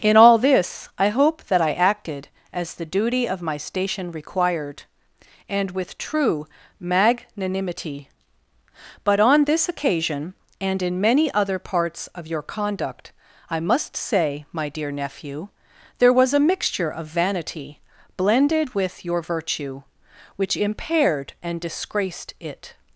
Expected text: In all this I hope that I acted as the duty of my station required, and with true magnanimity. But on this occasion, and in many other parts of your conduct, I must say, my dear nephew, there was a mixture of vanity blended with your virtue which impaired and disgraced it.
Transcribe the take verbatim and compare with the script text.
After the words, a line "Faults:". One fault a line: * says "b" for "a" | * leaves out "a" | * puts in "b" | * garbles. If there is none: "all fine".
In all this I hope that I acted as the duty of my station required, and with true magnanimity. But on this occasion, and in many other parts of your conduct, I must say, my dear nephew, there was a mixture of vanity blended with your virtue which impaired and disgraced it.
Faults:
all fine